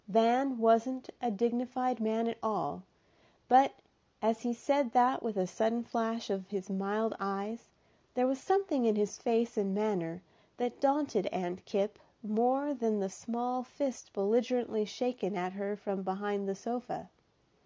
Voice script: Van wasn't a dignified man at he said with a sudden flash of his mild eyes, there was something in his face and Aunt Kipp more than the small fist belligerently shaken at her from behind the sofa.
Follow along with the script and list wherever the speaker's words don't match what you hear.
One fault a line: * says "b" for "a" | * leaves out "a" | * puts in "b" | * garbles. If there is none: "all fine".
* puts in "all but as"
* puts in "that"
* puts in "manner that daunted"